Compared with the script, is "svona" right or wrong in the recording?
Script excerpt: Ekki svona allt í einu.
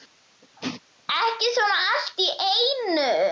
right